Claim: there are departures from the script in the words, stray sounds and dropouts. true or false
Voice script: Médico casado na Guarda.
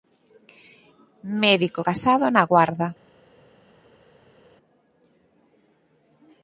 false